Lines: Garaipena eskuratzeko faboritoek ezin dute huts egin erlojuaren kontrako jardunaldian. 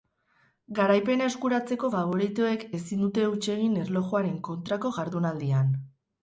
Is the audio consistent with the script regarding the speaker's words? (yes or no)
yes